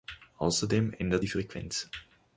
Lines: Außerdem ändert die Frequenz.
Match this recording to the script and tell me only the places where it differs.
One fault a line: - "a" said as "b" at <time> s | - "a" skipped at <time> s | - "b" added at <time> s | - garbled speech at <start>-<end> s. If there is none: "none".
none